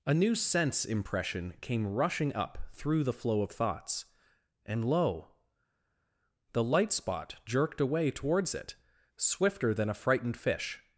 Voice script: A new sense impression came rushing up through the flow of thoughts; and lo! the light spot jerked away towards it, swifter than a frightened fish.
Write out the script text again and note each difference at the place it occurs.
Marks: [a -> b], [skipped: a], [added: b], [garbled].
A new sense impression came rushing up through the flow of thoughts; and lo! the light spot jerked away towards it, swifter than a frightened fish.